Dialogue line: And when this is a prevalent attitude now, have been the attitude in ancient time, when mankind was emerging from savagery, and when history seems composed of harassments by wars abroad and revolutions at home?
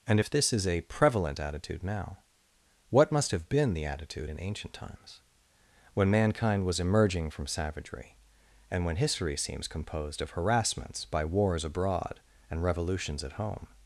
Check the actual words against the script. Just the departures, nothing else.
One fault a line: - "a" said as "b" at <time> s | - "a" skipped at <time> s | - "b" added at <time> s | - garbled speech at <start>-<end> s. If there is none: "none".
- "when" said as "if" at 0.2 s
- "what must" added at 2.9 s
- "time" said as "times" at 4.7 s